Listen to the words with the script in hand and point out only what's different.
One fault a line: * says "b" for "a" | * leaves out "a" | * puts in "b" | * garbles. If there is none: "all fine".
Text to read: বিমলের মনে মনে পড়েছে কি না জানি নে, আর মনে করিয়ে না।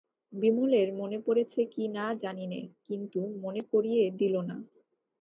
* leaves out "মনে"
* says "কিন্তু" for "আর"
* puts in "দিল"